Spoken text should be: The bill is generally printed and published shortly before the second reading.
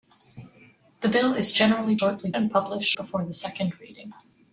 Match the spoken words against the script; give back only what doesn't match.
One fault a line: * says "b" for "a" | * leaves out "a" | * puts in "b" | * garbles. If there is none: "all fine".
* says "shortly" for "printed"
* leaves out "shortly"